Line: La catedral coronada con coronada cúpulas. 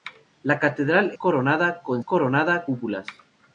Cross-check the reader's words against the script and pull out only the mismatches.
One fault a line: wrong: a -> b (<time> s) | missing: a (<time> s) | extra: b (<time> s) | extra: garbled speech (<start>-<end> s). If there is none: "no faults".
no faults